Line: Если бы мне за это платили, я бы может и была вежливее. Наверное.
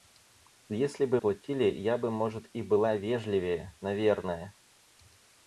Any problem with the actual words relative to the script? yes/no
yes